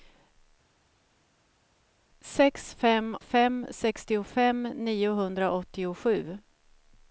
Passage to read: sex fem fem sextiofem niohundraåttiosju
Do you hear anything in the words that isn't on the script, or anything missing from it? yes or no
no